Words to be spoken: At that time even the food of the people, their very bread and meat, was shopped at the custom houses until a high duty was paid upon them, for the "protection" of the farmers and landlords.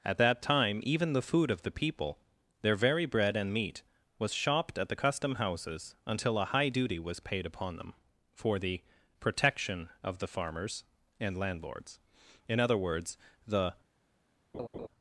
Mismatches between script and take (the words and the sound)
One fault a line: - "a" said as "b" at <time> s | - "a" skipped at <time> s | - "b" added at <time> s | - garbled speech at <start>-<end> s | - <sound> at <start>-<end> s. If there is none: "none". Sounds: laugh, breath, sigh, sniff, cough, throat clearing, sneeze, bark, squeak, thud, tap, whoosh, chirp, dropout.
- "In other words the" added at 12.5 s
- laugh at 14.5-14.9 s